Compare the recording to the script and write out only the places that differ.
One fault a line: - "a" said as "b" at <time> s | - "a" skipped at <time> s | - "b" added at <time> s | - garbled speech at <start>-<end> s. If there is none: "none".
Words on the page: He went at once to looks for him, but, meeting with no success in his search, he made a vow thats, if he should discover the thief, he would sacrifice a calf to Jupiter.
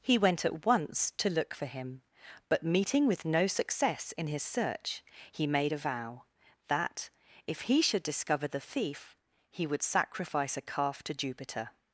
- "looks" said as "look" at 1.3 s
- "thats" said as "that" at 6.7 s